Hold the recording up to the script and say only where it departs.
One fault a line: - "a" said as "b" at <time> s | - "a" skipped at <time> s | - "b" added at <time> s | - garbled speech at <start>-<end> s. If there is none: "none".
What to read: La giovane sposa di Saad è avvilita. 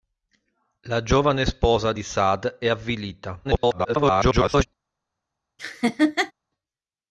- garbled speech at 3.4-4.7 s